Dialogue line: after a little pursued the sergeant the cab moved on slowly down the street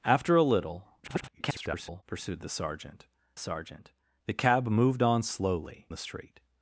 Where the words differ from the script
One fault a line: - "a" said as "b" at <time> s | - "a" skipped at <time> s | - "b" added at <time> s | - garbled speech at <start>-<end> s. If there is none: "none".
- garbled speech at 1.0-2.0 s
- "sergeant" added at 3.4 s
- "down" skipped at 5.9 s